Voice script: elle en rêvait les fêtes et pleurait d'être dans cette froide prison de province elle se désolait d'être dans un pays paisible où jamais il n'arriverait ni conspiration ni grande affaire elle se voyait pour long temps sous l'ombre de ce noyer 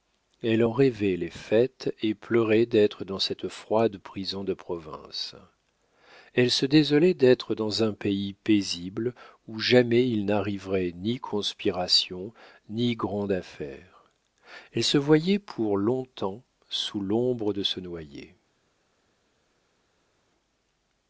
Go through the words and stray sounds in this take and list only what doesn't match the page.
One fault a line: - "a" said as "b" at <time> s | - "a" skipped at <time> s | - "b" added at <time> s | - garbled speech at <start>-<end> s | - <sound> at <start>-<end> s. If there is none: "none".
none